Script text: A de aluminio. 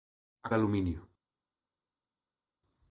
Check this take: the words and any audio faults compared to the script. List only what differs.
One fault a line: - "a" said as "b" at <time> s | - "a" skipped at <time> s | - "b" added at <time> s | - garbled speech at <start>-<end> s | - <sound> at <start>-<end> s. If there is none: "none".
none